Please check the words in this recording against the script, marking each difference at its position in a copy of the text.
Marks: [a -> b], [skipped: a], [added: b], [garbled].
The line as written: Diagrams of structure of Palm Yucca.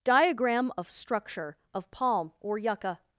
[Diagrams -> Diagram] of structure of Palm [added: or] Yucca.